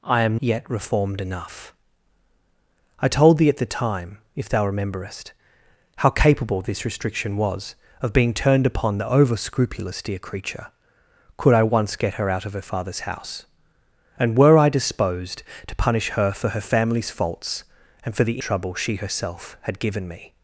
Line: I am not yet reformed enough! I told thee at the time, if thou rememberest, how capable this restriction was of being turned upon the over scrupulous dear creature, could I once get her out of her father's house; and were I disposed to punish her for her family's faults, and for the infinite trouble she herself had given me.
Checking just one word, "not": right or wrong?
wrong